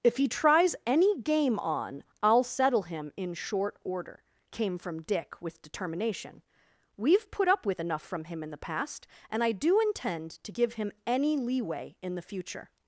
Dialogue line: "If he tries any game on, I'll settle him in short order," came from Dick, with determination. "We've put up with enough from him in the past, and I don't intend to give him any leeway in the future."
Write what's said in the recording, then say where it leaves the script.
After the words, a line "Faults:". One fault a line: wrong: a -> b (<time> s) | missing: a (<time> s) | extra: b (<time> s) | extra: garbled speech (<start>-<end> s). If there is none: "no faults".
"If he tries any game on, I'll settle him in short order," came from Dick, with determination. "We've put up with enough from him in the past, and I do intend to give him any leeway in the future."
Faults:
wrong: don't -> do (9.5 s)